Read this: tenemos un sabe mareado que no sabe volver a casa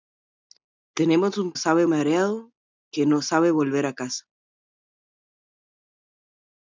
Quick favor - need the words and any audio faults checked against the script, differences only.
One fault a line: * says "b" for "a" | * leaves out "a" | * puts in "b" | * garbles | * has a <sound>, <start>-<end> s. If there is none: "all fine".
all fine